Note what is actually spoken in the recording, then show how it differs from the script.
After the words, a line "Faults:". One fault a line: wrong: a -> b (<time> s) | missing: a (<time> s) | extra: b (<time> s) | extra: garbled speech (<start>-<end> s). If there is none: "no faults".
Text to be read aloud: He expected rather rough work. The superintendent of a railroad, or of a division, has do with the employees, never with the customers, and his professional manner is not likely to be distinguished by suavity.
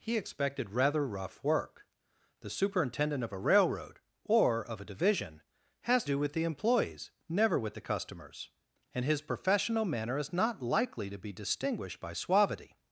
He expected rather rough work. The superintendent of a railroad, or of a division, has do with the employees, never with the customers, and his professional manner is not likely to be distinguished by suavity.
Faults:
no faults